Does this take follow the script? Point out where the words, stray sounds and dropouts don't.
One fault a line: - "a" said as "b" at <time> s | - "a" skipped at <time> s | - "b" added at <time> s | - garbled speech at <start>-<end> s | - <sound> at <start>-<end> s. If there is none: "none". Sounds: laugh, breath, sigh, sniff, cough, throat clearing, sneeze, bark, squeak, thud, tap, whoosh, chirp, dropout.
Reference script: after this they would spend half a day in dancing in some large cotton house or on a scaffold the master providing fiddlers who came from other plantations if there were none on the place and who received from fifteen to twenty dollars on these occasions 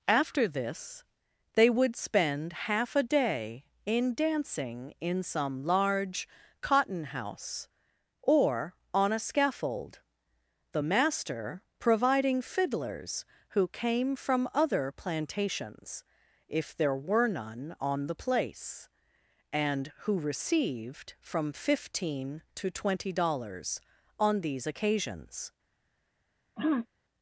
- throat clearing at 26.6-26.9 s